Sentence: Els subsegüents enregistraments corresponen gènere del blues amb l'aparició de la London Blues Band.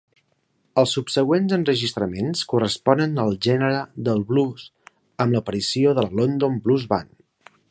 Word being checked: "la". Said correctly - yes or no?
yes